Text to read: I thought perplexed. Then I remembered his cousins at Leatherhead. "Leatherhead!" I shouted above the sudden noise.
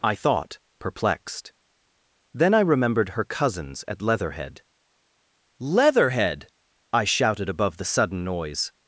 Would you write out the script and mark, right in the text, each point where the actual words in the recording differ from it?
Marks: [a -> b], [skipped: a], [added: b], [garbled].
I thought perplexed. Then I remembered [his -> her] cousins at Leatherhead. "Leatherhead!" I shouted above the sudden noise.